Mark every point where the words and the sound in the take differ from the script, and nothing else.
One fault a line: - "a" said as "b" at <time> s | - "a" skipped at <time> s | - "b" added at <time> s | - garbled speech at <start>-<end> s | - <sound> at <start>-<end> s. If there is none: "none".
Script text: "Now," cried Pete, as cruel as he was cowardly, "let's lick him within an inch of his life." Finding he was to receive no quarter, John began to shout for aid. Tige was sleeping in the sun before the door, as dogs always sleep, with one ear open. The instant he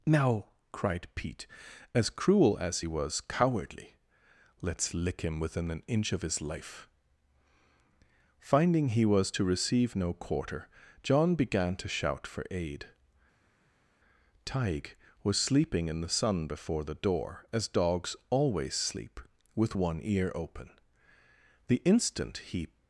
none